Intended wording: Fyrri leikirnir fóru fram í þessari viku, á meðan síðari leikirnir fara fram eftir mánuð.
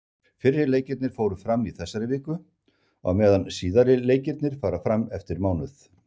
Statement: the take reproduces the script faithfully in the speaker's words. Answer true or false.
true